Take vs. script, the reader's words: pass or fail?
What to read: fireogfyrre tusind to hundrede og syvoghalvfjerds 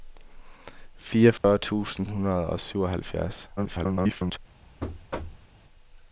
fail